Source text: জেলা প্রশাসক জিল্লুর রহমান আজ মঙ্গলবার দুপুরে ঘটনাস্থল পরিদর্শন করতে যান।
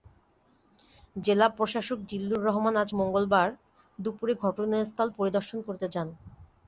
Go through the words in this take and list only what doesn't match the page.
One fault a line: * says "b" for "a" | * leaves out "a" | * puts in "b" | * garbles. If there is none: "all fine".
all fine